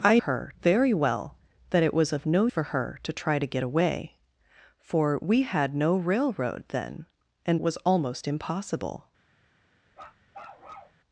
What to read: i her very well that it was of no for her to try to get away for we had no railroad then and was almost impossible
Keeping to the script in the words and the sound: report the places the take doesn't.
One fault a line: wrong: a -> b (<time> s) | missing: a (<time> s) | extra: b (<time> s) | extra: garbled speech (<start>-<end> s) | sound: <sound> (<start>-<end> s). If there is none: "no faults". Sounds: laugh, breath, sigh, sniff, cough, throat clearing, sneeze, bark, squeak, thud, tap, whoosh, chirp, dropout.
sound: bark (9.9-11.0 s)